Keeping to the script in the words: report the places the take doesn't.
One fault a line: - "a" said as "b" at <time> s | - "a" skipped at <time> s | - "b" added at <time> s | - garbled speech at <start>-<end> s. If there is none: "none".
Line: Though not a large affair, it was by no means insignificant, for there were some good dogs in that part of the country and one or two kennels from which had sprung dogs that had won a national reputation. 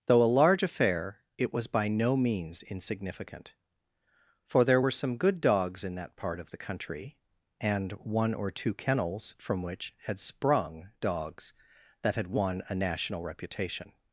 - "not" skipped at 0.2 s